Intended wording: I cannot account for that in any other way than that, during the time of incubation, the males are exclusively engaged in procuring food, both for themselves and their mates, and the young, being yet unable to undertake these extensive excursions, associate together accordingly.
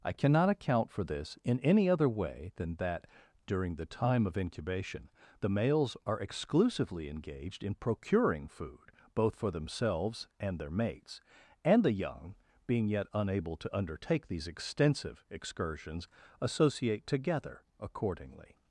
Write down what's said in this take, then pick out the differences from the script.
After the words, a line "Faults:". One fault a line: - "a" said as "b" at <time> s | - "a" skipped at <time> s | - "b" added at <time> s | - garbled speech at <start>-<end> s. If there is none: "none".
I cannot account for this in any other way than that, during the time of incubation, the males are exclusively engaged in procuring food, both for themselves and their mates, and the young, being yet unable to undertake these extensive excursions, associate together accordingly.
Faults:
- "that" said as "this" at 1.0 s